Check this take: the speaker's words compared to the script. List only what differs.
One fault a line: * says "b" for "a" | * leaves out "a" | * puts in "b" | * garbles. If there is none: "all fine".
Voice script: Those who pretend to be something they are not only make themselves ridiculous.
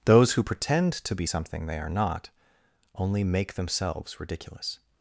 all fine